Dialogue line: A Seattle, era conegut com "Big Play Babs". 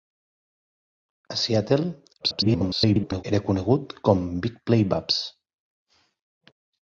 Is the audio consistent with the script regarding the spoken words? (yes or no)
no